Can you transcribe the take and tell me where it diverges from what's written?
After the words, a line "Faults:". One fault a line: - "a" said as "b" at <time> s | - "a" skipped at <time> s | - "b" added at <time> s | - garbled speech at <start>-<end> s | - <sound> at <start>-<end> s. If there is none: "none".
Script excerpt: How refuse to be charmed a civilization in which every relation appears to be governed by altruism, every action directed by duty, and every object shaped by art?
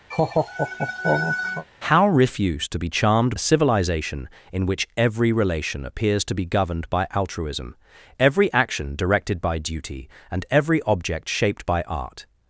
How refuse to be charmed a civilization in which every relation appears to be governed by altruism, every action directed by duty, and every object shaped by art?
Faults:
- laugh at 0.1-1.7 s